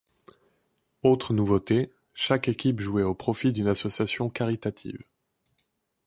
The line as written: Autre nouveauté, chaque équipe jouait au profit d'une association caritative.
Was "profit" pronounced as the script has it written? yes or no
yes